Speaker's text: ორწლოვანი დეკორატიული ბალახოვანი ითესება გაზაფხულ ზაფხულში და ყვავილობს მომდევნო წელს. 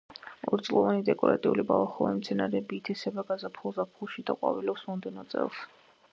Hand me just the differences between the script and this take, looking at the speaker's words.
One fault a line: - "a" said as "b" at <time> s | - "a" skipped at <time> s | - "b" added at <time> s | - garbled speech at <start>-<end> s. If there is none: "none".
- "მცენარეები" added at 2.2 s